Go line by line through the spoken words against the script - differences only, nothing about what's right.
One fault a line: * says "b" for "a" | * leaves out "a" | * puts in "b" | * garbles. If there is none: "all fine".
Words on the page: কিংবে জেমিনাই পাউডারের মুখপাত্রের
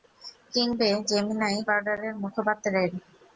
all fine